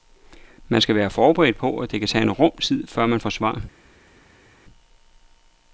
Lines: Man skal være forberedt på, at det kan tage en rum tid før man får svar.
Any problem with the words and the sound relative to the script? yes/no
no